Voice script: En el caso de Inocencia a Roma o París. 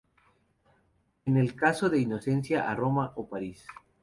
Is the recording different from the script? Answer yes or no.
no